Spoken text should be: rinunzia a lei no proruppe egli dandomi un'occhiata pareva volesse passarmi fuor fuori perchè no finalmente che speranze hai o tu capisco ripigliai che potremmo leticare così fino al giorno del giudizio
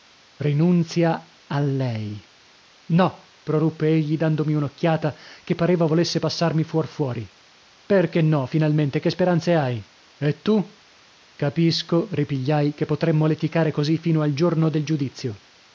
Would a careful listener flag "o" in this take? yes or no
yes